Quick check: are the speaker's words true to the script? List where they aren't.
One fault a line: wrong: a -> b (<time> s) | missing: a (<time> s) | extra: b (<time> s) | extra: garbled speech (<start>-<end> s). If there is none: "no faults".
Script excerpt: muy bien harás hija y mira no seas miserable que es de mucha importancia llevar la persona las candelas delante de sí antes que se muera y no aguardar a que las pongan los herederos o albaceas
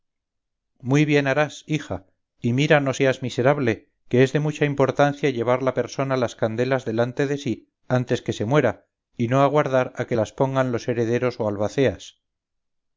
no faults